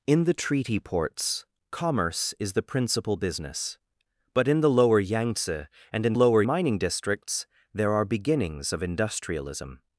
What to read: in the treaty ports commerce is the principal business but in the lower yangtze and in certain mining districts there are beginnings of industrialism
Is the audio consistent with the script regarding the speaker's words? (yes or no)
no